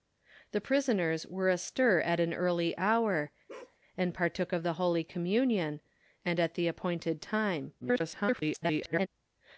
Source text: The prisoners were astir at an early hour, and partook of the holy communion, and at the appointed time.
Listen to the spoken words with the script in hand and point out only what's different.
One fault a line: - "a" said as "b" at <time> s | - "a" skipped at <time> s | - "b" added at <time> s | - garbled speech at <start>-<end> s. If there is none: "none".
- garbled speech at 7.8-9.1 s